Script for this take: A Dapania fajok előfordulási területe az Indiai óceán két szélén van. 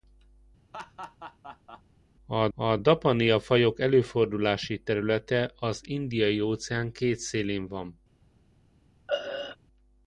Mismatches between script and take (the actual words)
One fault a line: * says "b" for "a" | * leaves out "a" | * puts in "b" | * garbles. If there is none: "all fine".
* puts in "a"